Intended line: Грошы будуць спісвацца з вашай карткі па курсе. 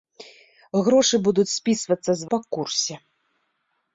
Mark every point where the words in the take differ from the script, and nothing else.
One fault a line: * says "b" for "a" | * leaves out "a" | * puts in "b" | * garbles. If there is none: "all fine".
* leaves out "вашай карткі"